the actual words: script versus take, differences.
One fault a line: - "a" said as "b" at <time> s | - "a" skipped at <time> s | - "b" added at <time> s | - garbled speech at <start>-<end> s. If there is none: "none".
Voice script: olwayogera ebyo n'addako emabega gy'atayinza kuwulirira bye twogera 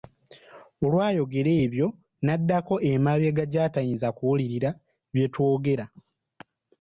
none